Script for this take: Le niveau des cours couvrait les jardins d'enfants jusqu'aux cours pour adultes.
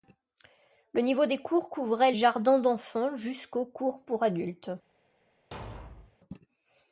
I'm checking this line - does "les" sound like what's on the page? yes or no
no